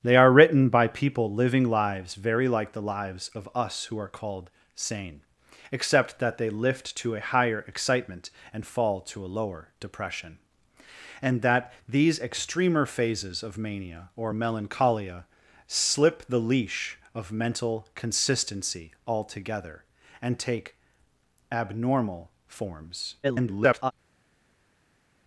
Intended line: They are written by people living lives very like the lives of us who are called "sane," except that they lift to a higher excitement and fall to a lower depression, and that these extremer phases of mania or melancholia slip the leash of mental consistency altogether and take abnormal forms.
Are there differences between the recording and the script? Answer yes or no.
yes